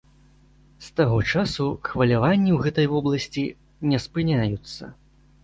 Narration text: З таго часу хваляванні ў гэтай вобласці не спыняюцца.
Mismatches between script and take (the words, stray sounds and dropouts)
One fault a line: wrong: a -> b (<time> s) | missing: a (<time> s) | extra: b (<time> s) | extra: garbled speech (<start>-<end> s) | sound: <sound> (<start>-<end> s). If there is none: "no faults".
no faults